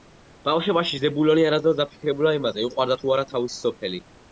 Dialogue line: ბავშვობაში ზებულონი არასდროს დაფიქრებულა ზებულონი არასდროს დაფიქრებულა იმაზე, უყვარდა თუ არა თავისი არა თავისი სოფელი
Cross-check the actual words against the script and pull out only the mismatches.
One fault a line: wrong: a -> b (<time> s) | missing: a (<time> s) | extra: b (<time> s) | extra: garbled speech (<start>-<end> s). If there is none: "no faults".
missing: ზებულონი არასდროს დაფიქრებულა (2.4 s)
missing: არა თავისი (3.6 s)